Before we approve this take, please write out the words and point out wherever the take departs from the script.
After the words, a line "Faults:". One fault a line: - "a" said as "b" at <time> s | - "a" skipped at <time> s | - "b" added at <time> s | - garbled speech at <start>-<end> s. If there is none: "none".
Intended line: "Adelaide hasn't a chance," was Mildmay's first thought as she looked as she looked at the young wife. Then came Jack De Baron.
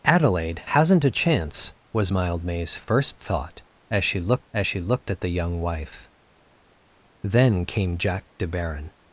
"Adelaide hasn't a chance," was Mildmay's first thought as she looked as she looked at the young wife. Then came Jack De Baron.
Faults:
none